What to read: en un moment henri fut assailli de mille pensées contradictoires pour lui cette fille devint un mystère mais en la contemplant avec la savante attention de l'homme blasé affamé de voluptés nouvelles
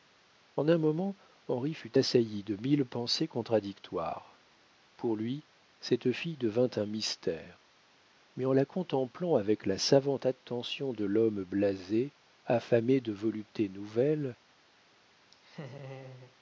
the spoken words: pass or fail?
pass